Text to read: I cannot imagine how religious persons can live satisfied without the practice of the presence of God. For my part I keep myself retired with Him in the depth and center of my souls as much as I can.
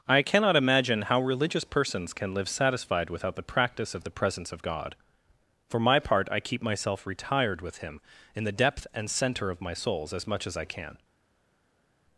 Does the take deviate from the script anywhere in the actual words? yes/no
no